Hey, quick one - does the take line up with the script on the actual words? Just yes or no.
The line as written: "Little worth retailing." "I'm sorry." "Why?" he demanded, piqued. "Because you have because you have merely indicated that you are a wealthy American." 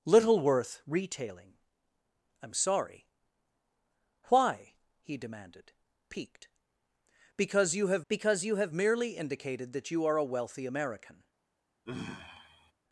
yes